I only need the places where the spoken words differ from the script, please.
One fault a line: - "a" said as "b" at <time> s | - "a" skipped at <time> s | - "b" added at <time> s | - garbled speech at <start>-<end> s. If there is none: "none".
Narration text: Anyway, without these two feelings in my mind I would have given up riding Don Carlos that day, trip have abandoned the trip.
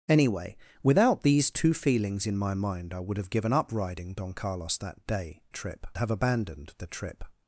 none